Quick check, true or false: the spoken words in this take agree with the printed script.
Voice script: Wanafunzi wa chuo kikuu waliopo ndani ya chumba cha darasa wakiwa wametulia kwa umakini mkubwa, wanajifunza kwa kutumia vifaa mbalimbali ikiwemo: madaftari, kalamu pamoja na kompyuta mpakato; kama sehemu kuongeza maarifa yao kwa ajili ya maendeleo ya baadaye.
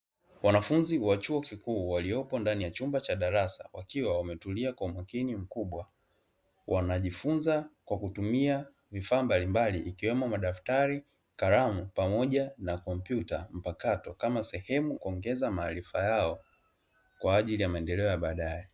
true